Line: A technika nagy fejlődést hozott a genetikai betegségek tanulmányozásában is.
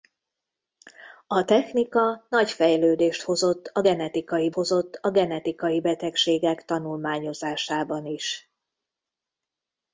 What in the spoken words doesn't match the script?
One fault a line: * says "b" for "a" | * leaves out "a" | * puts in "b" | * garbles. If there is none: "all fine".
* puts in "hozott a genetikai"